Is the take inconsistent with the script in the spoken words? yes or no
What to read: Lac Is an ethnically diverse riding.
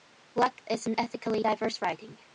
no